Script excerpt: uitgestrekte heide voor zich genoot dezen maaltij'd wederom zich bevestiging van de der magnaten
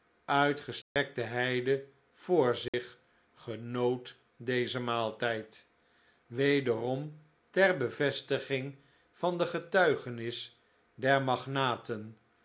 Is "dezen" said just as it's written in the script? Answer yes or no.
yes